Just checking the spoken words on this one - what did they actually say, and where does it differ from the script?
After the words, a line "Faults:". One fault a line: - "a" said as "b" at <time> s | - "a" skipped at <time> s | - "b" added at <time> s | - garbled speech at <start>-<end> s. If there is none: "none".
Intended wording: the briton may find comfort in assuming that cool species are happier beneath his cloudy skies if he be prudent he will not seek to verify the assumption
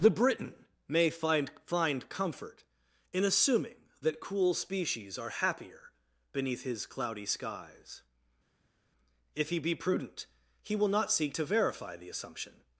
the briton may find find comfort in assuming that cool species are happier beneath his cloudy skies if he be prudent he will not seek to verify the assumption
Faults:
- "find" added at 1.7 s